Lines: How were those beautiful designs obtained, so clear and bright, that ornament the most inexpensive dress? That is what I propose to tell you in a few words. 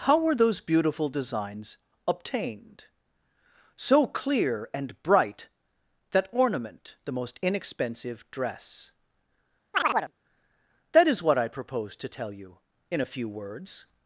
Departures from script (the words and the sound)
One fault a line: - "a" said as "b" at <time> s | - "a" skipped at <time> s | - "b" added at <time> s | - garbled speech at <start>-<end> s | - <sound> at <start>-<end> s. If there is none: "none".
- chirp at 9.7-10.1 s